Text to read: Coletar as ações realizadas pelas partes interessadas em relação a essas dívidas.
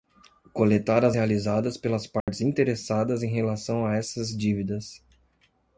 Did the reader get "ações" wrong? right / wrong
wrong